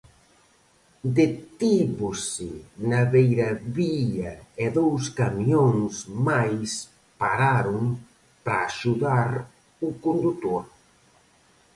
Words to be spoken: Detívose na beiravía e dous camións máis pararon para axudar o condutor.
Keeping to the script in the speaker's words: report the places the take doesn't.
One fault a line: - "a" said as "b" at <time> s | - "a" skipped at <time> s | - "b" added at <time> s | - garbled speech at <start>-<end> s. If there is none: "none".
none